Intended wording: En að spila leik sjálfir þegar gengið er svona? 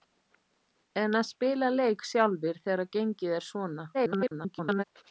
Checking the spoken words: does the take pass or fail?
fail